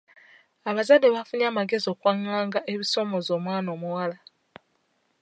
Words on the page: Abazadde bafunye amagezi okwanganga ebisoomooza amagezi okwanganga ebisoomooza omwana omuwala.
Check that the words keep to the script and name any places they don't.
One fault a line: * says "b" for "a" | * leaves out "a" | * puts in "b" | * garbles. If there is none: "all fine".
* leaves out "amagezi okwanganga ebisoomooza"